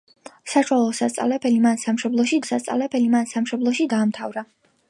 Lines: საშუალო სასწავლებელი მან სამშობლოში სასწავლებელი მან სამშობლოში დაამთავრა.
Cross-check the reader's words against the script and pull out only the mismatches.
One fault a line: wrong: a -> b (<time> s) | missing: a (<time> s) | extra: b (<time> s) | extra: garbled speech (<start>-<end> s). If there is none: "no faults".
no faults